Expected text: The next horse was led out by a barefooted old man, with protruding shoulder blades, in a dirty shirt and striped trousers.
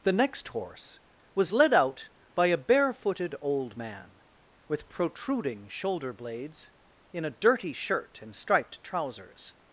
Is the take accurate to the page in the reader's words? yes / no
yes